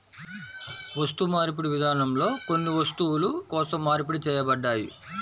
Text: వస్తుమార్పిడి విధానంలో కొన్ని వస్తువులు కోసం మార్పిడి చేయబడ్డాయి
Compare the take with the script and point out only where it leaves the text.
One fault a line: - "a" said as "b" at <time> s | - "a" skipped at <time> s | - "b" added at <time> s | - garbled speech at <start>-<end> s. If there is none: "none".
none